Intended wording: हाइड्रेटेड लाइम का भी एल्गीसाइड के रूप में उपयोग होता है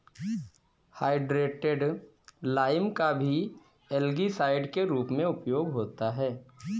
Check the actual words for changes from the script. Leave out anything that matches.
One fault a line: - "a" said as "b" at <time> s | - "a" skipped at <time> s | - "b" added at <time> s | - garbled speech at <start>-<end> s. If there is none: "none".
none